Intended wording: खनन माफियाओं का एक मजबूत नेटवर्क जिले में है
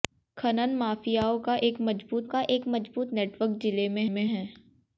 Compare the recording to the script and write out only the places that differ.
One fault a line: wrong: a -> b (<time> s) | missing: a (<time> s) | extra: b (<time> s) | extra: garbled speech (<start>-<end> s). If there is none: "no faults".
extra: का एक मजबूत (2.3 s)
extra: में (4.1 s)